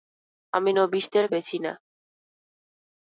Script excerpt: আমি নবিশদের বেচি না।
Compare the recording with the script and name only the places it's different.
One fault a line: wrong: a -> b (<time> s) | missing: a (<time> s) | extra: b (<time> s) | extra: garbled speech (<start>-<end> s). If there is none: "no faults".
no faults